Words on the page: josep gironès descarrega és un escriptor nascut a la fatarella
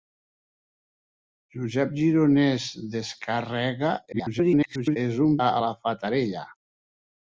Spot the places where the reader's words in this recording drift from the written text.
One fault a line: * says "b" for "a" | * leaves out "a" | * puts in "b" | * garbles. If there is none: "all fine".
* garbles
* leaves out "escriptor nascut"